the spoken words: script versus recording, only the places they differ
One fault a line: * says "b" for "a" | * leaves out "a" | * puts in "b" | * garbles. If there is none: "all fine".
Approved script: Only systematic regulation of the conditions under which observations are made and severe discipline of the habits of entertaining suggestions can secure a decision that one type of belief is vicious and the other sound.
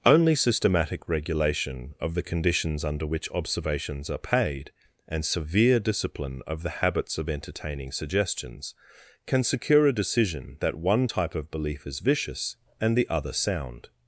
* says "paid" for "made"